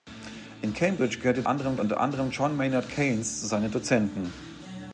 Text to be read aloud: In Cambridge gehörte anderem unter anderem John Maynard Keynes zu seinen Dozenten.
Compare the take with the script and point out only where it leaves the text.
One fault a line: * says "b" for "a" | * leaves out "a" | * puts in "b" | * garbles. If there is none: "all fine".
all fine